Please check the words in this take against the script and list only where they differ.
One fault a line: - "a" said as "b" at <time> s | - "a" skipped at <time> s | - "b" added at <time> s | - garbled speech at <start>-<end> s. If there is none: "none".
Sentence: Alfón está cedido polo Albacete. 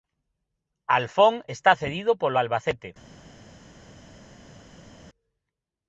none